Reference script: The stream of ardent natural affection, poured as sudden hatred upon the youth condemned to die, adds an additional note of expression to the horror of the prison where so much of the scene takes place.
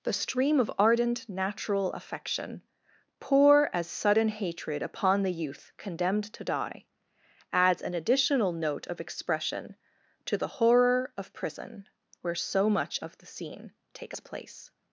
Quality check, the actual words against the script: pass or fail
fail